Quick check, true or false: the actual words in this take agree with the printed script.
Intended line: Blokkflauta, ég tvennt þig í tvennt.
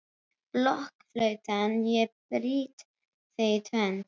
false